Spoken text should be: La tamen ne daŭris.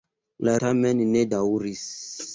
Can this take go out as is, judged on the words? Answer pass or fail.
pass